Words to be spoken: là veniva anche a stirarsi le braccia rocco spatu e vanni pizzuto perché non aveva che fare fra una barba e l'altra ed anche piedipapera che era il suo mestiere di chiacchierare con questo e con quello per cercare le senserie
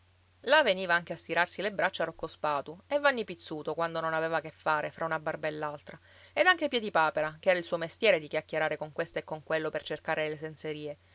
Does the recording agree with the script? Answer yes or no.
no